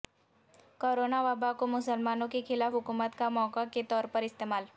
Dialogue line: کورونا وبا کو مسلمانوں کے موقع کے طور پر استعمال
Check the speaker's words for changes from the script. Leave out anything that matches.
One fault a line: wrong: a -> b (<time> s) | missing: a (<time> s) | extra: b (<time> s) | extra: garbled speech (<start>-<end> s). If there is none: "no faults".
extra: خلاف حکومت کا (2.5 s)